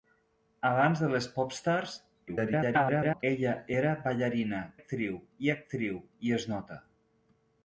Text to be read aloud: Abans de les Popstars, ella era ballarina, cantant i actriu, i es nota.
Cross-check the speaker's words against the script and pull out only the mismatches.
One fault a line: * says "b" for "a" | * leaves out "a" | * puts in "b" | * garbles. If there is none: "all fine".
* garbles
* says "actriu" for "cantant"